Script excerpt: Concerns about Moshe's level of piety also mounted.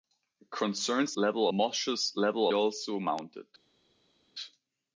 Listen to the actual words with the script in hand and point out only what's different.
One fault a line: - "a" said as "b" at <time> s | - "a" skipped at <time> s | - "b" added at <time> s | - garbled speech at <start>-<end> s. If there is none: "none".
- "about" said as "level" at 1.2 s
- "of piety" skipped at 2.5 s